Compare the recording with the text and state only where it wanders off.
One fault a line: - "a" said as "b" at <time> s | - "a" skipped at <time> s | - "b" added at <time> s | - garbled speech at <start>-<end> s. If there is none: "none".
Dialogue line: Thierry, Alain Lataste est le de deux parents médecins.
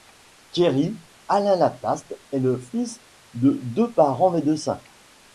- "fils" added at 2.6 s